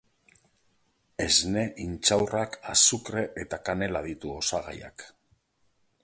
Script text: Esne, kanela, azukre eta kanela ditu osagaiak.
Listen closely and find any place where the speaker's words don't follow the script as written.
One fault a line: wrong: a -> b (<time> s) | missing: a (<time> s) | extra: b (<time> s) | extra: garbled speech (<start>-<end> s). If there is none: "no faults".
wrong: kanela -> intxaurrak (1.8 s)